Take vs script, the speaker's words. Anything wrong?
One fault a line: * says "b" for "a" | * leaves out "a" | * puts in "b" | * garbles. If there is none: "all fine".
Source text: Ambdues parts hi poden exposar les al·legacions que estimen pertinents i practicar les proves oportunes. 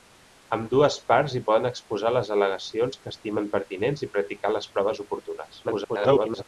* garbles